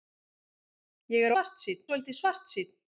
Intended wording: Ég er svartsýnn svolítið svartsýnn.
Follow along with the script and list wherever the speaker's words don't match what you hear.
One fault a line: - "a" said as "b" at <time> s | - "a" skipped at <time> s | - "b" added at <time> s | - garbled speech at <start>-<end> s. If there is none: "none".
none